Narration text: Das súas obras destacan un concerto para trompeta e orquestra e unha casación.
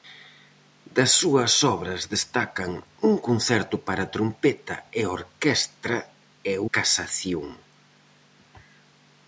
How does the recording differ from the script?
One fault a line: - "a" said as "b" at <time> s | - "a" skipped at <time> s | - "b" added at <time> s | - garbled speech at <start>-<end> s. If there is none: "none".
- "unha" skipped at 6.5 s